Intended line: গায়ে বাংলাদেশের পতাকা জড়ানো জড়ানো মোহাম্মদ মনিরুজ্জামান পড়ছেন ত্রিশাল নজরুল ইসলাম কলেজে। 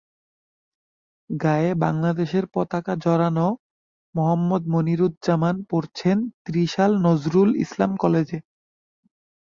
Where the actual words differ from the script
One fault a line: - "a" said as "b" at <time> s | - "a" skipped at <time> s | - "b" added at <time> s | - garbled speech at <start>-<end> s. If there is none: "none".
- "জড়ানো" skipped at 3.5 s